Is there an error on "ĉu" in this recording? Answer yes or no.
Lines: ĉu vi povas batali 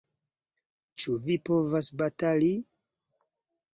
no